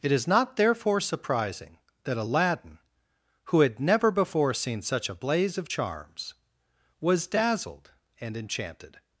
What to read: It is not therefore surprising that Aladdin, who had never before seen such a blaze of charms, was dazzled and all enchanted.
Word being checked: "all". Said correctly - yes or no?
no